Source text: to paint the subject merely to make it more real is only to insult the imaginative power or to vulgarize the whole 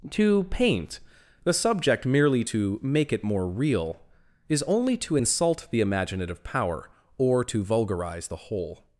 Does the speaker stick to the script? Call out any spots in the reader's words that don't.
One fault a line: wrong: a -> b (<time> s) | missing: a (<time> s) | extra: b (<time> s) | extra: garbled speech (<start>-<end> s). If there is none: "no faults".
no faults